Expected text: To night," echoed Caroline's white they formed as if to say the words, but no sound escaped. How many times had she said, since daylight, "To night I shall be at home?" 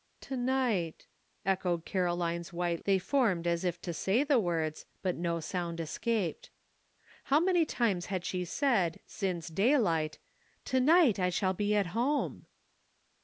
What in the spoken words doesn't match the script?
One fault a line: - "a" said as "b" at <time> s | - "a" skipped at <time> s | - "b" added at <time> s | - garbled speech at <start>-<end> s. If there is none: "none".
none